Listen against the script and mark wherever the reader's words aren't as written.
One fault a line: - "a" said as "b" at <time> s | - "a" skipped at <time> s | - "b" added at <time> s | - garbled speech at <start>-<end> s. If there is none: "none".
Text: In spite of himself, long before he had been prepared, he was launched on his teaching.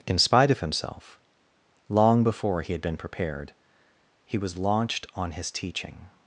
none